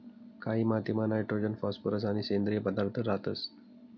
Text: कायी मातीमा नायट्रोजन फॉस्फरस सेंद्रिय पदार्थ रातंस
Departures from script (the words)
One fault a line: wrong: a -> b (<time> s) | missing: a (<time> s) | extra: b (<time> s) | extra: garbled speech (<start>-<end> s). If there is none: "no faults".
extra: आणि (2.0 s)